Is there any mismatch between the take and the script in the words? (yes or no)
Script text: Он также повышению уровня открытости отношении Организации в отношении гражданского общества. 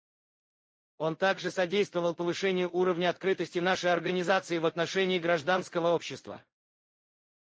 yes